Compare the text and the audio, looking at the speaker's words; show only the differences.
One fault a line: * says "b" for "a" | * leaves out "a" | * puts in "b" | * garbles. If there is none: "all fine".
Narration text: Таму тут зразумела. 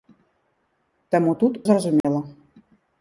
all fine